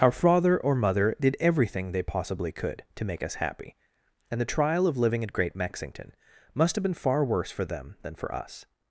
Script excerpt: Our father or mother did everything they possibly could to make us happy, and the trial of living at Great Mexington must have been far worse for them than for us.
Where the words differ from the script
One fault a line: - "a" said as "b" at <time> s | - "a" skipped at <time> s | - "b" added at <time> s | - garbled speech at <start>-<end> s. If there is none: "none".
none